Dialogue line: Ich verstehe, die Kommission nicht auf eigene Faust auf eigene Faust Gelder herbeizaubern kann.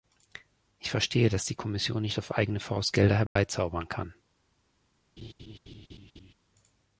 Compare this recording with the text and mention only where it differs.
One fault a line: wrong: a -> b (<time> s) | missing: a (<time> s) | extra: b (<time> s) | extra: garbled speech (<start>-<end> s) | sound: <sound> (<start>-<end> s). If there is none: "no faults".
extra: dass (1.3 s)
missing: auf eigene Faust (2.9 s)
sound: dropout (3.3-3.4 s)
sound: laugh (5.2-6.3 s)